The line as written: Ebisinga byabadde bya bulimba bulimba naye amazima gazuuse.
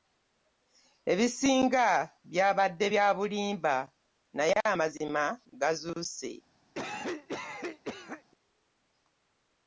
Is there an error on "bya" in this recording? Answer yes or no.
no